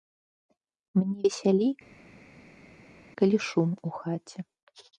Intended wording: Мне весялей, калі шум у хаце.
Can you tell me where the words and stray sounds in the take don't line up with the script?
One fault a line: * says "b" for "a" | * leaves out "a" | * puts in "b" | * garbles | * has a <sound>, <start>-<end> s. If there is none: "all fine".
all fine